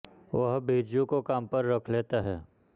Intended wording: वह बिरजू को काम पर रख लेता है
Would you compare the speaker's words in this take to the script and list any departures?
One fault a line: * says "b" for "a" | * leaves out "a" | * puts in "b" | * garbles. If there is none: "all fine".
all fine